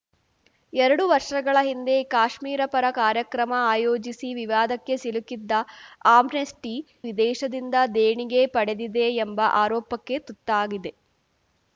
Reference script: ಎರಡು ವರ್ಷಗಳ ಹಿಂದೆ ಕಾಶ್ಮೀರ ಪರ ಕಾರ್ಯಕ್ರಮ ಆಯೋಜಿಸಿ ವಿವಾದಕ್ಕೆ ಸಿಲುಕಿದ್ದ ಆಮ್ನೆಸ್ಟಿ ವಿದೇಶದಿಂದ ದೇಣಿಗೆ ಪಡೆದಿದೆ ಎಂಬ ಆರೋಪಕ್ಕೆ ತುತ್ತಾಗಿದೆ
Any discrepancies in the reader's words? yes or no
no